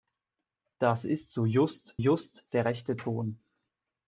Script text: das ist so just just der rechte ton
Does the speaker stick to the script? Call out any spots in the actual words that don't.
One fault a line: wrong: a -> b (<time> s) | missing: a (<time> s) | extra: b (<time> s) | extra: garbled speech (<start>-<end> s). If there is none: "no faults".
no faults